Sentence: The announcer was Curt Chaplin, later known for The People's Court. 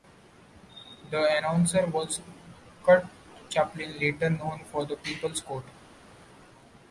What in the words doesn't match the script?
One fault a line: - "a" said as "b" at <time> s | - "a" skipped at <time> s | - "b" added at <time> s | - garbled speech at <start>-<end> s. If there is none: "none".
none